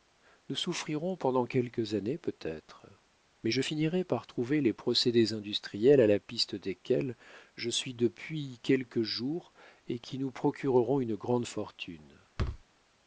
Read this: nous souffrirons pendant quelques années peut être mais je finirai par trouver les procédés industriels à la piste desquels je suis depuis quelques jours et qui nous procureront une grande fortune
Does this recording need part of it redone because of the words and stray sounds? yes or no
yes